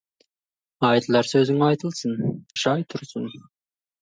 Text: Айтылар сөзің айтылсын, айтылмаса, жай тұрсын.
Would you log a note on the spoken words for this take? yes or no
yes